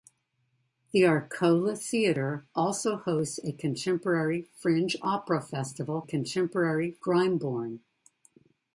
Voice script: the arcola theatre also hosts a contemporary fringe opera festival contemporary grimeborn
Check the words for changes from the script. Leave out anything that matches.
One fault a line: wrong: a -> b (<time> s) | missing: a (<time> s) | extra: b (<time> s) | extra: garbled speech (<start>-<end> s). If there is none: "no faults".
no faults